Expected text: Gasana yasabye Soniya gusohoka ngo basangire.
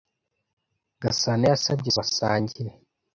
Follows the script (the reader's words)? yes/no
no